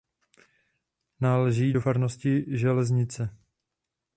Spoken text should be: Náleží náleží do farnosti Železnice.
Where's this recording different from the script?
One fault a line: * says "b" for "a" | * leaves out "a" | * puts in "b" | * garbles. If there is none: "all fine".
* leaves out "náleží"